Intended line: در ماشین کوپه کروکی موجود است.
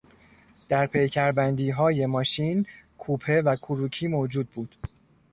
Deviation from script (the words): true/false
true